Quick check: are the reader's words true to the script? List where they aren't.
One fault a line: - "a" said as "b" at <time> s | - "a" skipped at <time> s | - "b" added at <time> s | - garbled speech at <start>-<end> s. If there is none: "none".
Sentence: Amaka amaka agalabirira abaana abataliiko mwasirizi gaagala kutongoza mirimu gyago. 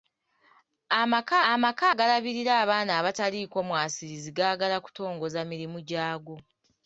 none